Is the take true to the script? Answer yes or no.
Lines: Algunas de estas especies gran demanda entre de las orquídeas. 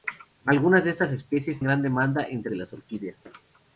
yes